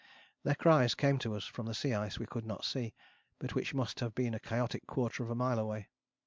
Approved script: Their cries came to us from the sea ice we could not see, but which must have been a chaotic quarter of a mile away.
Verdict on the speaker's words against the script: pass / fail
pass